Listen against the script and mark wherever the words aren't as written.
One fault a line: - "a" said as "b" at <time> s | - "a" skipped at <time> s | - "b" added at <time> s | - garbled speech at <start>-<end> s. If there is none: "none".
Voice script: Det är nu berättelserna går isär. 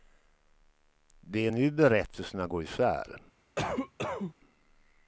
none